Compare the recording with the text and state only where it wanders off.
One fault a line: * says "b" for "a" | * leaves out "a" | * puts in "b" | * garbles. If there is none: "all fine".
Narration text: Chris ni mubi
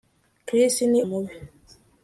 all fine